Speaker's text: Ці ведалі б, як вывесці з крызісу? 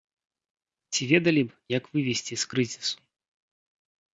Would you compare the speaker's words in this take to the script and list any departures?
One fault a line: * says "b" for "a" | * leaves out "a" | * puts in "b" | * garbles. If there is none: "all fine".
all fine